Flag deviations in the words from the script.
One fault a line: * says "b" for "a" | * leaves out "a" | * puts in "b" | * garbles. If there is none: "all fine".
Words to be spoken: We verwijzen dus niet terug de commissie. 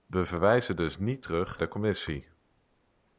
all fine